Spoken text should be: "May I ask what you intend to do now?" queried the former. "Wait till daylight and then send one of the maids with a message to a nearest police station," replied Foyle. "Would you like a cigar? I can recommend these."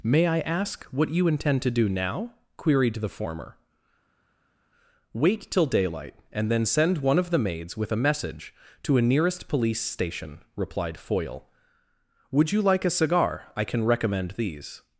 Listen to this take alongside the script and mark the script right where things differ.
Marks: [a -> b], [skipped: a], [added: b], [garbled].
"May I ask what you intend to do now?" queried the former. "Wait till daylight and then send one of the maids with a message to a nearest police station," replied Foyle. "Would you like a cigar? I can recommend these."